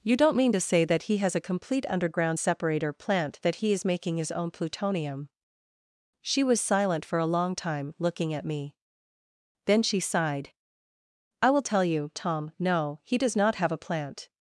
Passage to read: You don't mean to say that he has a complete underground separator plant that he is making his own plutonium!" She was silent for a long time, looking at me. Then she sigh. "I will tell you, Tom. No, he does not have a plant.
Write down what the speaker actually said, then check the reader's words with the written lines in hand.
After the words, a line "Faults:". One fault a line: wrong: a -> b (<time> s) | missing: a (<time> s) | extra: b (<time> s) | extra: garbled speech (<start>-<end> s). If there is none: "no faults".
You don't mean to say that he has a complete underground separator plant that he is making his own plutonium!" She was silent for a long time, looking at me. Then she sighed. "I will tell you, Tom. No, he does not have a plant.
Faults:
wrong: sigh -> sighed (10.0 s)